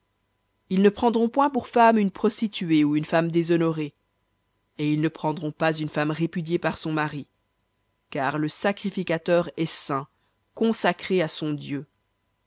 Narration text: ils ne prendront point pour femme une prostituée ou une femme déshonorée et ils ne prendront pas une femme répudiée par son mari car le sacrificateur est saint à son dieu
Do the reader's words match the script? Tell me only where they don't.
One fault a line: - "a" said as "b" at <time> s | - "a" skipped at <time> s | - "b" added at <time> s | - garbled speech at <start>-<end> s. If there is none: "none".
none